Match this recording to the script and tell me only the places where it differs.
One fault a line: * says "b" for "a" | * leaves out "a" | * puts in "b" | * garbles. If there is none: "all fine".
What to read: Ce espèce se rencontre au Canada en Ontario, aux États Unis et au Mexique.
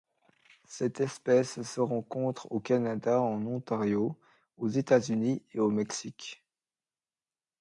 * says "Cette" for "Ce"